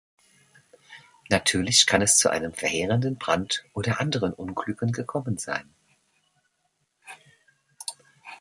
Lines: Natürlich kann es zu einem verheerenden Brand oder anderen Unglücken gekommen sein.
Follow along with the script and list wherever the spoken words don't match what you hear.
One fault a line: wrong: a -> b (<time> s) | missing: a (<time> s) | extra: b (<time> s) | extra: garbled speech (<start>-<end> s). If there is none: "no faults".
no faults